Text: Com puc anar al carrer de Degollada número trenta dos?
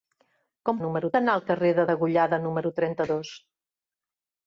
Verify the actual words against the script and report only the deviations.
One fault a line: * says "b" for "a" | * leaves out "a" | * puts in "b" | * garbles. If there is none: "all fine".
* says "número" for "puc"